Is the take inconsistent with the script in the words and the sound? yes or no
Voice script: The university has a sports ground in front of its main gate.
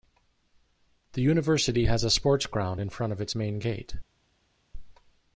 no